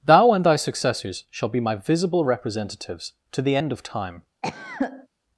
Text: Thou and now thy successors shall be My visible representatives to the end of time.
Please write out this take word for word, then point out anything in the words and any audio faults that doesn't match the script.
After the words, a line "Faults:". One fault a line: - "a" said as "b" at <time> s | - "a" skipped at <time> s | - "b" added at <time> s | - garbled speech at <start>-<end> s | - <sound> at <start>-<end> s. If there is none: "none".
Thou and thy successors shall be My visible representatives to the end of time.
Faults:
- "now" skipped at 0.4 s
- cough at 4.4-5.1 s